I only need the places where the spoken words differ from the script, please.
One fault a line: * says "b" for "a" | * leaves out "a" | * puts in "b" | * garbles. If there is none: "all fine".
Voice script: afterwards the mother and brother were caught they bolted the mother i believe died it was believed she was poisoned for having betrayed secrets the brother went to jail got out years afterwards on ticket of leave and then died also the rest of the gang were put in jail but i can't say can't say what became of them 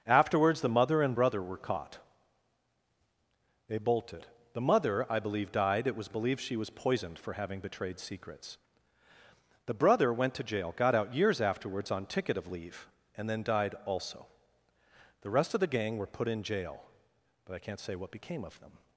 * leaves out "can't say"